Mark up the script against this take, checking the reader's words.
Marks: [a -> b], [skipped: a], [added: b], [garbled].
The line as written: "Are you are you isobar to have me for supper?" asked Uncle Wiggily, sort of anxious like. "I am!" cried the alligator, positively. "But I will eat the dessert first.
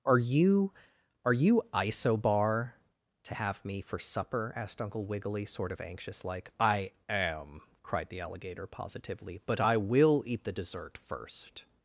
"Are you are you isobar to have me for supper?" asked Uncle Wiggily, sort of anxious like. "I am!" cried the alligator, positively. "But I will eat the dessert first.